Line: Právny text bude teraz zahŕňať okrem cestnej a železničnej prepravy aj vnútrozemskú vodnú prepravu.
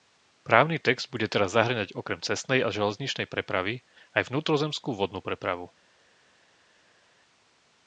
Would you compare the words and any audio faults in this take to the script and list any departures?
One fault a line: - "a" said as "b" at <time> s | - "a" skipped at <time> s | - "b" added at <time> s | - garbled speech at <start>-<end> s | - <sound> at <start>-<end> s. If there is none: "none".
none